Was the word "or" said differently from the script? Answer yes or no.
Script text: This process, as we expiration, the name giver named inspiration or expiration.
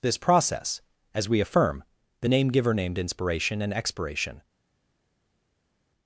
yes